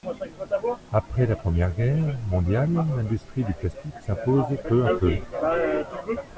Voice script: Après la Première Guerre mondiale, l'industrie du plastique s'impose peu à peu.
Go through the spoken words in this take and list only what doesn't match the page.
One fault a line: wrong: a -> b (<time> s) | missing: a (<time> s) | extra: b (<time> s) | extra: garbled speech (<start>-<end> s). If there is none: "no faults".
no faults